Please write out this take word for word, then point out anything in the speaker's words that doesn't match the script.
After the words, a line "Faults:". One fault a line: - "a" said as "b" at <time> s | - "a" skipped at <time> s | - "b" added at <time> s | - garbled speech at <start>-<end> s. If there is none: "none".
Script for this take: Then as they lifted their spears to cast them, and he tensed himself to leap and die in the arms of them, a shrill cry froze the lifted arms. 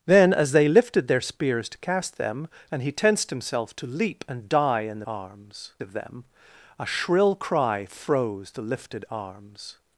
Then as they lifted their spears to cast them, and he tensed himself to leap and die in the arms of them, a shrill cry froze the lifted arms.
Faults:
none